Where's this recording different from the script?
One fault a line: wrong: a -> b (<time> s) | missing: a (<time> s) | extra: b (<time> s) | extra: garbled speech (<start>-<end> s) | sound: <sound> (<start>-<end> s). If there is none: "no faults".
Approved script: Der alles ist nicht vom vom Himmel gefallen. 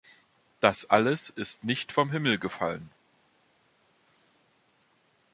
wrong: Der -> Das (0.6 s)
missing: vom (2.1 s)